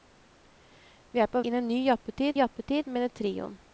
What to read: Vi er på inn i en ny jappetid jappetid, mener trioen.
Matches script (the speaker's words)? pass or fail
pass